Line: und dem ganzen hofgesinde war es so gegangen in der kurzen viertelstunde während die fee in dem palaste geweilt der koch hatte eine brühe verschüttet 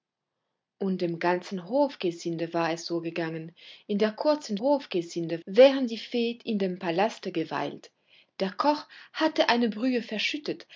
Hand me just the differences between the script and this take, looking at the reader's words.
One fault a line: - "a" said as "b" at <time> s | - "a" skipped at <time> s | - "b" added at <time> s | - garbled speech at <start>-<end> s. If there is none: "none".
- "viertelstunde" said as "hofgesinde" at 4.6 s